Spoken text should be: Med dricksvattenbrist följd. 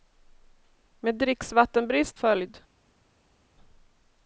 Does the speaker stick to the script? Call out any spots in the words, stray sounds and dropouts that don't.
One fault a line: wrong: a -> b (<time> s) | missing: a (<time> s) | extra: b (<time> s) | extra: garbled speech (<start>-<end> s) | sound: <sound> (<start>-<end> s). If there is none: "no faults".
no faults